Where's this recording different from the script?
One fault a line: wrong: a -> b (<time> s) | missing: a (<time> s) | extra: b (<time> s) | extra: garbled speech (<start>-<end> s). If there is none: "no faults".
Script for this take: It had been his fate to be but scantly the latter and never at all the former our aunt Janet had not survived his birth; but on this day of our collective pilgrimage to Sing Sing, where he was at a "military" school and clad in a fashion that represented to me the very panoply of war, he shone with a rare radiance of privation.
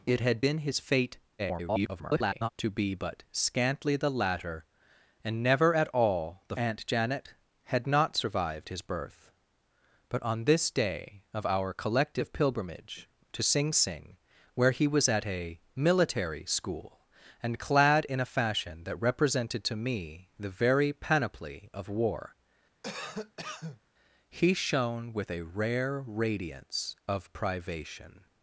extra: garbled speech (1.4-2.5 s)
missing: former our (6.6 s)